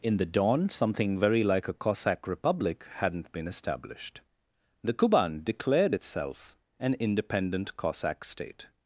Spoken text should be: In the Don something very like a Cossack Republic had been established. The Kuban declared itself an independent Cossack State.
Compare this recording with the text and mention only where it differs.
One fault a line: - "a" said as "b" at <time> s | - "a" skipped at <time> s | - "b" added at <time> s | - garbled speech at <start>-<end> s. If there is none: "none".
- "had" said as "hadn't" at 3.0 s